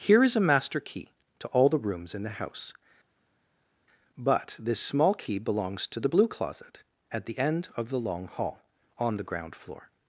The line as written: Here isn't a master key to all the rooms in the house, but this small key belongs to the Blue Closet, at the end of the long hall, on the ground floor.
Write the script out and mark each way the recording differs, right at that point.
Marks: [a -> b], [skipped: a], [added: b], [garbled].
Here [isn't -> is] a master key to all the rooms in the house, but this small key belongs to the Blue Closet, at the end of the long hall, on the ground floor.